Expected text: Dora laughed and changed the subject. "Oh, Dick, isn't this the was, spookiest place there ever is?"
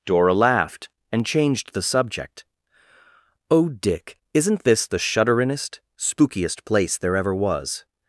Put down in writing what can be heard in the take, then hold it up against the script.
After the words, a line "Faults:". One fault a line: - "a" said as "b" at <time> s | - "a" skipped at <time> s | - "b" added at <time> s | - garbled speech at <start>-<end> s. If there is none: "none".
Dora laughed and changed the subject. "Oh, Dick, isn't this the shudderin'est, spookiest place there ever was?"
Faults:
- "was" said as "shudderin'est" at 5.0 s
- "is" said as "was" at 7.3 s